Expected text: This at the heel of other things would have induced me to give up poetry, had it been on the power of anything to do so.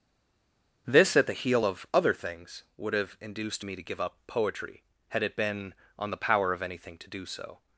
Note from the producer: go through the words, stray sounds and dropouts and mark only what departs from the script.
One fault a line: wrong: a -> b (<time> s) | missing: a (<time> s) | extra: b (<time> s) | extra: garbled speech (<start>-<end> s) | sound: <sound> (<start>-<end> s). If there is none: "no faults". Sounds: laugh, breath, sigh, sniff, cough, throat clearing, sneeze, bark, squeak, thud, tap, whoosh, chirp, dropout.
no faults